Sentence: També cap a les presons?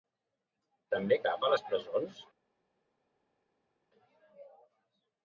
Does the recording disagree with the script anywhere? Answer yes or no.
no